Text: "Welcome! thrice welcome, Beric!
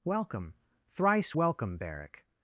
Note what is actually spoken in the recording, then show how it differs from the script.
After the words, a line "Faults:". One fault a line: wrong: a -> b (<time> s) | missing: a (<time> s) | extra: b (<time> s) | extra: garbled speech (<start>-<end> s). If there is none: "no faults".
"Welcome! thrice welcome, Beric!
Faults:
no faults